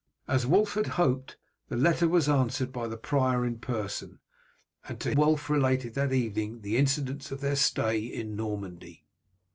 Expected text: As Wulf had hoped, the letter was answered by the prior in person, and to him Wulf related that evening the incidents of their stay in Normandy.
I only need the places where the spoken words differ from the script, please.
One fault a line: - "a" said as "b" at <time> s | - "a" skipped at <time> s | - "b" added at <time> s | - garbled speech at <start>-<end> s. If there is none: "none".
- "him" skipped at 5.1 s